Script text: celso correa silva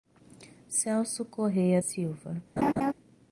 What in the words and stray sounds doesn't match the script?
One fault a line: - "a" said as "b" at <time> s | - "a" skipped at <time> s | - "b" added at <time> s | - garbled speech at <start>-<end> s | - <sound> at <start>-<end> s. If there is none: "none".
- laugh at 2.6-2.9 s